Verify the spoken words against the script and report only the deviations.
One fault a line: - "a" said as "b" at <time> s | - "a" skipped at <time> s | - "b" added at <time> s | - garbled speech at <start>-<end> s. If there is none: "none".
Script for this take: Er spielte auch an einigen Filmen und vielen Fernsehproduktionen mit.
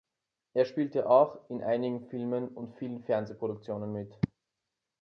- "an" said as "in" at 1.5 s